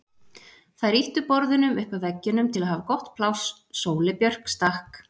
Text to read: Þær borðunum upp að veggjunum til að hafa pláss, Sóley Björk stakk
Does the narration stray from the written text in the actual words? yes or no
yes